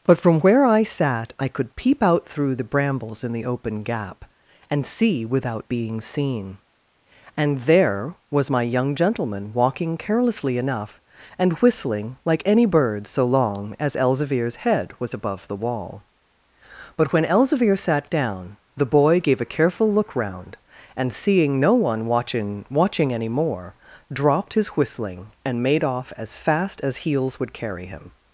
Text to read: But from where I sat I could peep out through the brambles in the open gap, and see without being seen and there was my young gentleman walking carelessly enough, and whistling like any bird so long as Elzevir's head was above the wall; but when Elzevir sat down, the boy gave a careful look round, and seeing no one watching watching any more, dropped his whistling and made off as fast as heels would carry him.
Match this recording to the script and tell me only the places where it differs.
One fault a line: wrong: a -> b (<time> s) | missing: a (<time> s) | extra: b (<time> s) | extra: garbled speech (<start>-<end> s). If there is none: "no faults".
no faults